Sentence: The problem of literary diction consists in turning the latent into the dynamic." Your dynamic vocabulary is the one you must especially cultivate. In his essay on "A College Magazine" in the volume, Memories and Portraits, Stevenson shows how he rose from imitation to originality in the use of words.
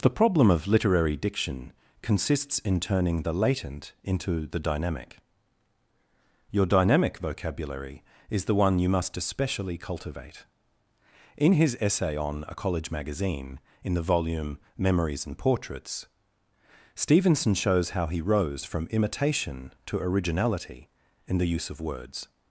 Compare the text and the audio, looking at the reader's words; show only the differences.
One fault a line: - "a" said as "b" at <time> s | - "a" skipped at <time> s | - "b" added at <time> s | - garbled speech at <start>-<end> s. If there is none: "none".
none